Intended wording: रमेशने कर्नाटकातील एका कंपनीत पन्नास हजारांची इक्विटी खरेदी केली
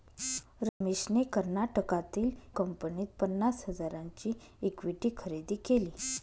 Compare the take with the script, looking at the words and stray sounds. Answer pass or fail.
fail